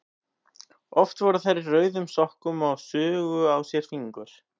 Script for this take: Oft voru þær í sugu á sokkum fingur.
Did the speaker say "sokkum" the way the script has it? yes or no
no